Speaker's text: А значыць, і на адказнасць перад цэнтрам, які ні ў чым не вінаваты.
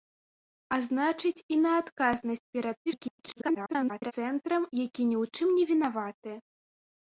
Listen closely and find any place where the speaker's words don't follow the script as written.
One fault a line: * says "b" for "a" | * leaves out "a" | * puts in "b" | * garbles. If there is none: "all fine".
* garbles